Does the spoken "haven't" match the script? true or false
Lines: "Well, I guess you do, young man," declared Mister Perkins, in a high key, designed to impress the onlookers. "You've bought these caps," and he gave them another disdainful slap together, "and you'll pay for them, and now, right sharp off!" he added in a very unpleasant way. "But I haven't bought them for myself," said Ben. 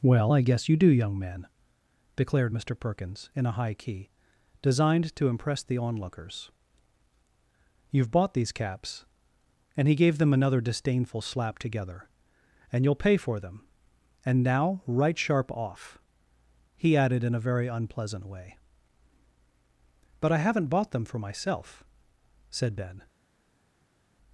true